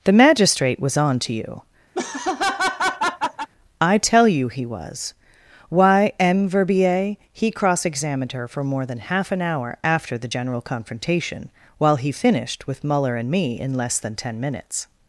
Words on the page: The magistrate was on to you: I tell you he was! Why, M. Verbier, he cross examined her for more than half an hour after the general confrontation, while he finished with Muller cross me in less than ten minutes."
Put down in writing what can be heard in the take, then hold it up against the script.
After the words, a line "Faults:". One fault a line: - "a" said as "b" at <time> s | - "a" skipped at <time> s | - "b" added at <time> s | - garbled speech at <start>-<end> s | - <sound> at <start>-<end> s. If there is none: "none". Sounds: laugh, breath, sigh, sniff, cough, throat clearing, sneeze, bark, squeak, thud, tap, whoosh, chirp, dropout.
The magistrate was on to you: I tell you he was! Why, M. Verbier, he cross examined her for more than half an hour after the general confrontation, while he finished with Muller and me in less than ten minutes."
Faults:
- laugh at 1.9-3.5 s
- "cross" said as "and" at 13.2 s